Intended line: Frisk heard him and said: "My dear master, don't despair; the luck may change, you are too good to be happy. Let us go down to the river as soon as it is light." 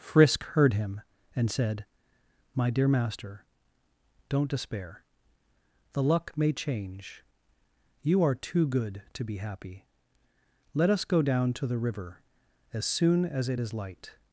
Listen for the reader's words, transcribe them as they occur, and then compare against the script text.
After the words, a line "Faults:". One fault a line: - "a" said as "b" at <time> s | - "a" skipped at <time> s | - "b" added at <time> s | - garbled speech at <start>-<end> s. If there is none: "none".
Frisk heard him and said: "My dear master, don't despair; the luck may change, you are too good to be happy. Let us go down to the river as soon as it is light."
Faults:
none